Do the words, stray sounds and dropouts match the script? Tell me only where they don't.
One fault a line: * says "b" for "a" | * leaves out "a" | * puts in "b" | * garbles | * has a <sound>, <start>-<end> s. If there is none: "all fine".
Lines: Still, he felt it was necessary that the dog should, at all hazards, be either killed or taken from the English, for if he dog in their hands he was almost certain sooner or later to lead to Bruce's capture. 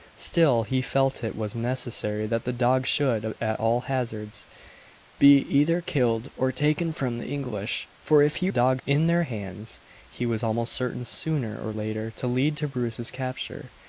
all fine